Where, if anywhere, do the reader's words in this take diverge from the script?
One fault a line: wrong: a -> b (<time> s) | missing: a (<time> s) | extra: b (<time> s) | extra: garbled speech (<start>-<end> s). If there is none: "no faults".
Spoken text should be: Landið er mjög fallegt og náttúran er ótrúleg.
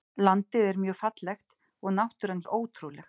no faults